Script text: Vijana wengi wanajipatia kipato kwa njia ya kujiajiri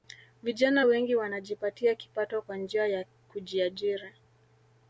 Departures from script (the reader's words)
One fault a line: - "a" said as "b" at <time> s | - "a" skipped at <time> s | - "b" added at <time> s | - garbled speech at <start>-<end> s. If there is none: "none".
none